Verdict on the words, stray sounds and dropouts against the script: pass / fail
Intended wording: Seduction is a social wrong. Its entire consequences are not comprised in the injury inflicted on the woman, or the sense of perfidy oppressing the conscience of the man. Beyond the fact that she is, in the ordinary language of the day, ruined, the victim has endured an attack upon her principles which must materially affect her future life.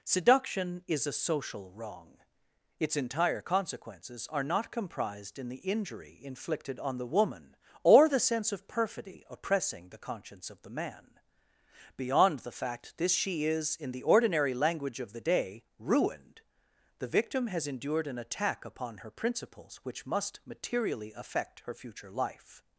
fail